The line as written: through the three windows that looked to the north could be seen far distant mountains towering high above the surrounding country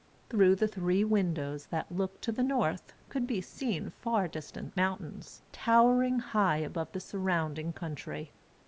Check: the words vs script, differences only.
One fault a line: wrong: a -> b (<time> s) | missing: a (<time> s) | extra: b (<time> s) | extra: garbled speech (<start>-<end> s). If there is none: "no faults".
no faults